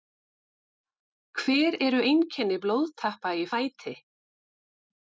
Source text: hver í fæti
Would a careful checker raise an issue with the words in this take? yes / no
yes